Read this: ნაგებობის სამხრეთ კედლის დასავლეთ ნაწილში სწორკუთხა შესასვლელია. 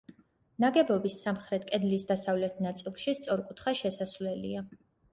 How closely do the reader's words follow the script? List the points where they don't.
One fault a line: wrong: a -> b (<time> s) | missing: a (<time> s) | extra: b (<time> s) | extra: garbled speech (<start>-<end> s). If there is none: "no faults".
no faults